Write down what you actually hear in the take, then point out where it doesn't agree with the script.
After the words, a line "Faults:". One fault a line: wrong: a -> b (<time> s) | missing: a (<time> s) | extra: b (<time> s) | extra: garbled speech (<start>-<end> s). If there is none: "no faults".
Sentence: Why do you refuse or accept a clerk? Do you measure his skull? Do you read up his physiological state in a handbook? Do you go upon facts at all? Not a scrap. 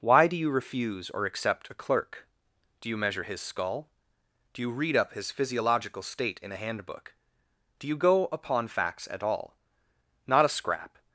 Why do you refuse or accept a clerk? Do you measure his skull? Do you read up his physiological state in a handbook? Do you go upon facts at all? Not a scrap.
Faults:
no faults